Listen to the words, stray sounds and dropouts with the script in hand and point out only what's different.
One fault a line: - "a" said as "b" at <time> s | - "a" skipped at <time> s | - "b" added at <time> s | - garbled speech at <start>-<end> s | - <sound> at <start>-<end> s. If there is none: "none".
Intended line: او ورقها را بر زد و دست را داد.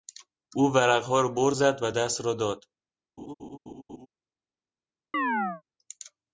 - laugh at 3.2-4.1 s
- chirp at 5.1-5.6 s